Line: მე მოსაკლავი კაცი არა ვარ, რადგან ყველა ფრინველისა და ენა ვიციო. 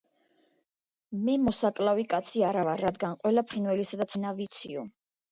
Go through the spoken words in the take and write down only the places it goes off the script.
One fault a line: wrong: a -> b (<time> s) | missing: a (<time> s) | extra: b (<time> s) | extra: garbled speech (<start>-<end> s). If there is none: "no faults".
no faults